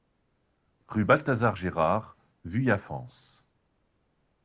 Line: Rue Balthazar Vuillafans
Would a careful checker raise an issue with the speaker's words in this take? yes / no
yes